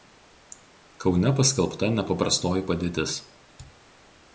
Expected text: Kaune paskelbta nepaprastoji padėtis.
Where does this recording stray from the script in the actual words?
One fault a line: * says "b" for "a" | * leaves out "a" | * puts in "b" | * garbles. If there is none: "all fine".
all fine